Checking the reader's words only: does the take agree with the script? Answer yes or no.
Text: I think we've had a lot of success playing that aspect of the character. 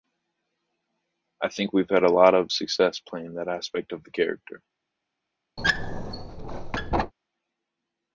yes